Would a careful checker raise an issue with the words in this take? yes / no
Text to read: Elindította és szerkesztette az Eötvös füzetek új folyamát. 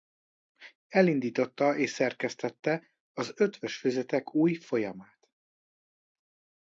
no